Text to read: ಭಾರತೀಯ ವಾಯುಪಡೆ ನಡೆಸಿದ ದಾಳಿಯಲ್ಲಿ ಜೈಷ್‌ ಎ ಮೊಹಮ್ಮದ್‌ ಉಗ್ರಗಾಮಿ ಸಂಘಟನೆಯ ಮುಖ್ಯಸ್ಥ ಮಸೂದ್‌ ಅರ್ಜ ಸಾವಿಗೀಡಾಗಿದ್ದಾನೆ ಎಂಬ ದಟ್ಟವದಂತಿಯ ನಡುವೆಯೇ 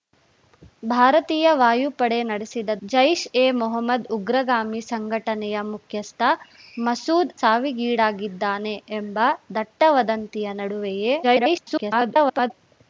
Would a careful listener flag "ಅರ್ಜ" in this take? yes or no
yes